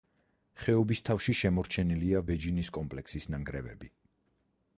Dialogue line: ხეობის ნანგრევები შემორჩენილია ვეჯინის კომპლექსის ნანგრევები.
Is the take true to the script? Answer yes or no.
no